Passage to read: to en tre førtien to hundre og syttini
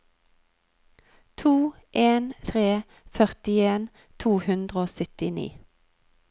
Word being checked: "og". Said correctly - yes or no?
yes